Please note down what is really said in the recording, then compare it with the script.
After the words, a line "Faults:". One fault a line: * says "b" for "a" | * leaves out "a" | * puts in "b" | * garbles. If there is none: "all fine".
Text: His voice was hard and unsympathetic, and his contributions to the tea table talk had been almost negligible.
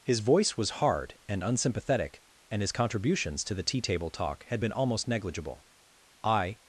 His voice was hard and unsympathetic, and his contributions to the tea table talk had been almost negligible. "I
Faults:
* puts in "I"